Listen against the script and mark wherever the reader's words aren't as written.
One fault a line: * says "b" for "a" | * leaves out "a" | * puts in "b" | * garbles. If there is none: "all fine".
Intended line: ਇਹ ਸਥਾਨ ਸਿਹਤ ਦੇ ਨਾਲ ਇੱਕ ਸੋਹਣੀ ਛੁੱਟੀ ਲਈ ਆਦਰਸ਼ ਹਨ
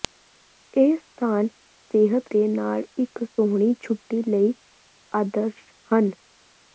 all fine